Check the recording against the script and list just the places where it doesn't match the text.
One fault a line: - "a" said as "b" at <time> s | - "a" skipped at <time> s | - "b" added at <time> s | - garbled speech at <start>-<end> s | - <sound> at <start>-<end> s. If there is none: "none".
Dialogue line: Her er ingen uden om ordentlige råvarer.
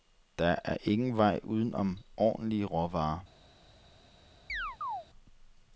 - "Her" said as "Der" at 0.4 s
- "vej" added at 1.2 s
- chirp at 4.5-5.1 s